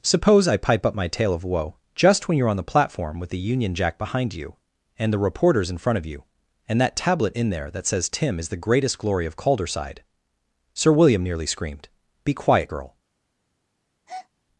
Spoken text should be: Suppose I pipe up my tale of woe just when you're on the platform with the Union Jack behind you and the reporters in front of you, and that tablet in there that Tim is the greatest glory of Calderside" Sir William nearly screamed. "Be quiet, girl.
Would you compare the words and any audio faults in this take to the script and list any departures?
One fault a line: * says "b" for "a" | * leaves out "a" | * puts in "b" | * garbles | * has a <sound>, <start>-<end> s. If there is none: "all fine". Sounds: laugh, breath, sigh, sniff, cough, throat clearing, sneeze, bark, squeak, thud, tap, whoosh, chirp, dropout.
* puts in "says"
* has a breath, 14.1-14.3 s